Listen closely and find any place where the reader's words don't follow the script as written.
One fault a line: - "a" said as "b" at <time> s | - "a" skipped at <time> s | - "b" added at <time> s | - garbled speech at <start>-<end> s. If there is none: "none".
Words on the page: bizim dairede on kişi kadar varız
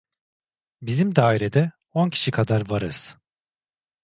none